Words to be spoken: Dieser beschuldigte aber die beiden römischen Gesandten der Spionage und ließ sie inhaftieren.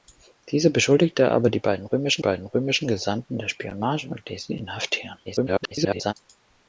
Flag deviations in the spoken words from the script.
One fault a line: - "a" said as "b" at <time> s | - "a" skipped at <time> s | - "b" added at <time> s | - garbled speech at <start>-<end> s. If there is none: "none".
- "beiden römischen" added at 2.2 s
- garbled speech at 5.3-6.1 s